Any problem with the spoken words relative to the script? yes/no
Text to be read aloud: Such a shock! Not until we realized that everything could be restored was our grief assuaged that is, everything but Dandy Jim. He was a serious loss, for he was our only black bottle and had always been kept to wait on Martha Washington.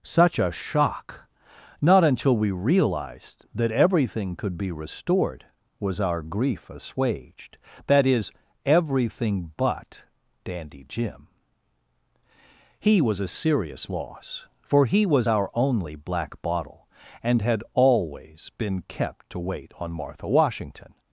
no